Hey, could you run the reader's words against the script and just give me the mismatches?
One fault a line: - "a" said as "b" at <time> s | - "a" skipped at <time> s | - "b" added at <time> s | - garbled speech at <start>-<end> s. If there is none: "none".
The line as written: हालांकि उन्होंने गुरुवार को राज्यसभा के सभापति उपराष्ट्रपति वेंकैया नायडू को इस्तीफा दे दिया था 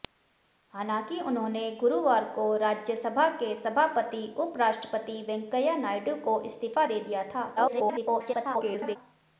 - garbled speech at 7.6-9.0 s